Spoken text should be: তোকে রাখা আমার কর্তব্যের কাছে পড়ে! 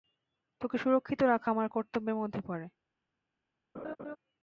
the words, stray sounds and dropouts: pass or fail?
fail